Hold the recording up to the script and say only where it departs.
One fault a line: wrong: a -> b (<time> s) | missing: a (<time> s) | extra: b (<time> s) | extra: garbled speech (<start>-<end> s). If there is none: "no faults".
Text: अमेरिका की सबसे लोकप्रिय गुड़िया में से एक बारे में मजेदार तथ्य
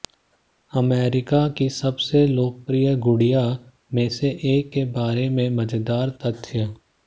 extra: के (4.7 s)